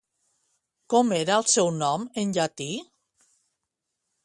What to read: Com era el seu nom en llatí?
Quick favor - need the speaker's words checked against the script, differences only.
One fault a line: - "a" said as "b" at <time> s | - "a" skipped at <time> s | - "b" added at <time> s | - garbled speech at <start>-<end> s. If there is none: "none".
none